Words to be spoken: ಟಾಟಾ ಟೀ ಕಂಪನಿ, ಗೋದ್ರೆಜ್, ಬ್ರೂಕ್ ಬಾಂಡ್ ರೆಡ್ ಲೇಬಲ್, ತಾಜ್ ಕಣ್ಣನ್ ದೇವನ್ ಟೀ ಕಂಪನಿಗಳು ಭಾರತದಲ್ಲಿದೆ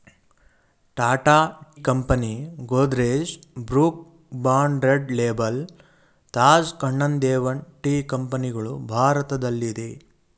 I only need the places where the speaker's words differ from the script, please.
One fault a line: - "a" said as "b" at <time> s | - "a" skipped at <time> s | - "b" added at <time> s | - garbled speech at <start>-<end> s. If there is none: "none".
- "ಟೀ" skipped at 1.4 s